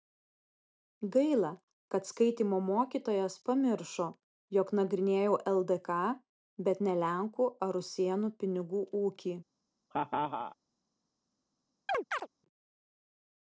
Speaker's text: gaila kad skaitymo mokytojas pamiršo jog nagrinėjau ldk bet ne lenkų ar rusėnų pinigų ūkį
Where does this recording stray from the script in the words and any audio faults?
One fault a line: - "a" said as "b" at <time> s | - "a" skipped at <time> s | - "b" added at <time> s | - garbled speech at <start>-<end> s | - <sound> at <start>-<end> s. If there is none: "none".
- laugh at 9.9-10.6 s
- chirp at 11.9-12.3 s